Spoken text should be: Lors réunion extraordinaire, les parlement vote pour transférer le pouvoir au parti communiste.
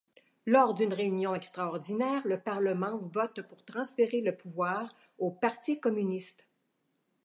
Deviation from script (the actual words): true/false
true